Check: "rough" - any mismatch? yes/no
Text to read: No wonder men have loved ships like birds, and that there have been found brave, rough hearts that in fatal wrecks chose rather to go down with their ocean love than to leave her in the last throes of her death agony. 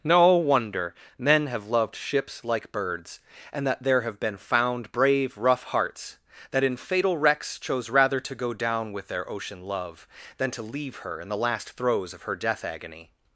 no